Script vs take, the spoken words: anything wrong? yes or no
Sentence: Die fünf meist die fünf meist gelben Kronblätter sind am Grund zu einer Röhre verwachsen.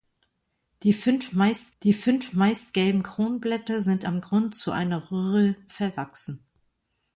no